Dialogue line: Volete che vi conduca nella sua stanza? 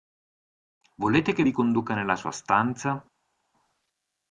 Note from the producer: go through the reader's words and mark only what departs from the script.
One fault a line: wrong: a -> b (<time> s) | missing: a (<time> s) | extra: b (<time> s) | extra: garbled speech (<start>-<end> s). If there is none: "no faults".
no faults